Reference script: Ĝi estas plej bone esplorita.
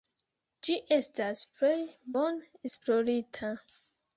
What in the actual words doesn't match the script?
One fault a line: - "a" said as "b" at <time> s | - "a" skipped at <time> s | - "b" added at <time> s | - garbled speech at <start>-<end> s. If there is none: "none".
none